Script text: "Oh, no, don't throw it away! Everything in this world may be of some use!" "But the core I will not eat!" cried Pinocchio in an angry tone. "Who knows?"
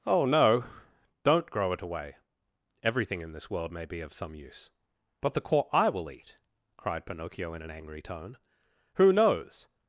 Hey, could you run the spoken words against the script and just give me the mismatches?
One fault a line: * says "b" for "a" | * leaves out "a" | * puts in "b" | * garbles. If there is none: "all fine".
* says "grow" for "throw"
* leaves out "not"